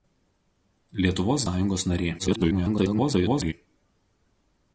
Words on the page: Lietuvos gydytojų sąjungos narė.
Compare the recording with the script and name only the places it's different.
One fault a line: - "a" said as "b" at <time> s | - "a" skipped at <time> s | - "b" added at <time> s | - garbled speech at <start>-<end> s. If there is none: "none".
- "gydytojų" skipped at 1.4 s
- garbled speech at 2.2-3.5 s